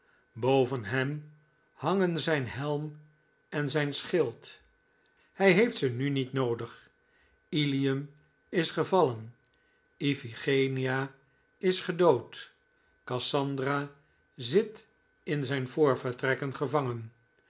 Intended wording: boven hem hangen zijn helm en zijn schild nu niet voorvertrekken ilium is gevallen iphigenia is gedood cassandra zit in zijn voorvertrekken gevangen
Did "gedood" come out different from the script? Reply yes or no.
no